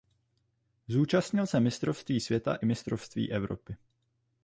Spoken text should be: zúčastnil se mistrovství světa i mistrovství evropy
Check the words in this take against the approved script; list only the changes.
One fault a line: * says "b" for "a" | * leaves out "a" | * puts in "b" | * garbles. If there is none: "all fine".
all fine